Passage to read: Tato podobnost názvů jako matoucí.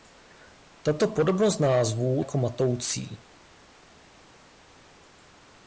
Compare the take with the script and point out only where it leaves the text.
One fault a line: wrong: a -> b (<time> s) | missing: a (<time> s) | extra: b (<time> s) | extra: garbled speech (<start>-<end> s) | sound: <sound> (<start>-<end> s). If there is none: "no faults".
no faults